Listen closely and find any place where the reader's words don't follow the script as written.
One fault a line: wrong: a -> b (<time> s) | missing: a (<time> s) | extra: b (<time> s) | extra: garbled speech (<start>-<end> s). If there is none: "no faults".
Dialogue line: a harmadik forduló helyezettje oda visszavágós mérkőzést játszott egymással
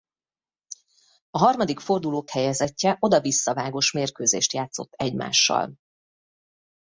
no faults